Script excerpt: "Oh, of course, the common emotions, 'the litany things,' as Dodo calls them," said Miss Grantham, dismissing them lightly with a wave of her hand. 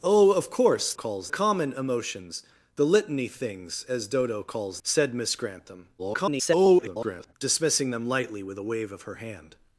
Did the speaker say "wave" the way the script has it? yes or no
yes